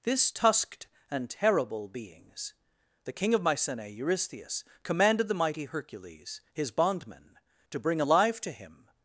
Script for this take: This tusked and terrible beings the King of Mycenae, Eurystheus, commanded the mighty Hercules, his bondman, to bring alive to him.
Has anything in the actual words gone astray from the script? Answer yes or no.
no